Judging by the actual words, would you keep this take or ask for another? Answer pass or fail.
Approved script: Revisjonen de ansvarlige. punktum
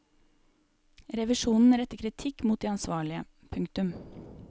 fail